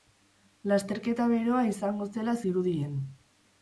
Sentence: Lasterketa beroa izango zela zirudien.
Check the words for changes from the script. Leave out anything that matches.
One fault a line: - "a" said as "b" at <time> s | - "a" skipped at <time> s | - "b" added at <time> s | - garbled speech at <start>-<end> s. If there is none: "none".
none